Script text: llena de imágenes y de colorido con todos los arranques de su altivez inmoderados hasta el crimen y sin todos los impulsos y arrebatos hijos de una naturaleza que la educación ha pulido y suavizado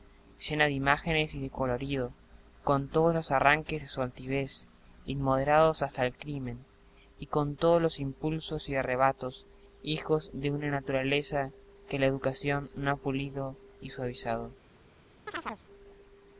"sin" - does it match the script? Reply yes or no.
no